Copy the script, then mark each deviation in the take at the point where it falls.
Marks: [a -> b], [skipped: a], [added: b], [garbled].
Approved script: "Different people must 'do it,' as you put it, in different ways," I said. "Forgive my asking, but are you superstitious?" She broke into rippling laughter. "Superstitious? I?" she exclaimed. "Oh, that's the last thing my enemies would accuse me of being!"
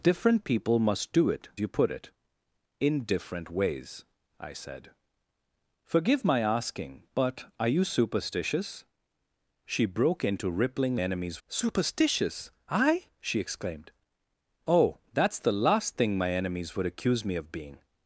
"Different people must 'do it,' [skipped: as] you put it, in different ways," I said. "Forgive my asking, but are you superstitious?" She broke into rippling [laughter. -> enemies] "Superstitious? I?" she exclaimed. "Oh, that's the last thing my enemies would accuse me of being!"